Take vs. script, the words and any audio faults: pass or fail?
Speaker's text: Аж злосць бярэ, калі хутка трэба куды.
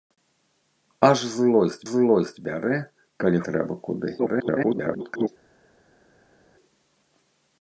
fail